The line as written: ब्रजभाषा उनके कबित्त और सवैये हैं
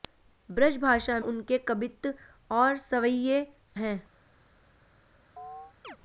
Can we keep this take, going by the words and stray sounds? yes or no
no